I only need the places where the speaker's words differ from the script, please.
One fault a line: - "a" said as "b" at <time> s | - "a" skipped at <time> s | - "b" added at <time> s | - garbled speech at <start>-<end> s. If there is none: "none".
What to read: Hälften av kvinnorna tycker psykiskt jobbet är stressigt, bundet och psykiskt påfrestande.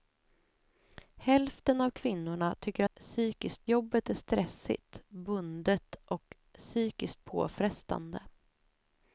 none